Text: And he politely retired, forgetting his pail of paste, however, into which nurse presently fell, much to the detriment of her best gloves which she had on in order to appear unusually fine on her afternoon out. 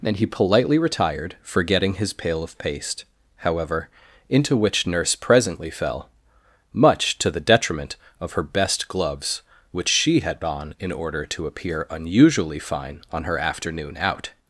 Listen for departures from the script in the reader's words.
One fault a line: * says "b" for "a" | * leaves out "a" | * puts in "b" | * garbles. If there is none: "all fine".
all fine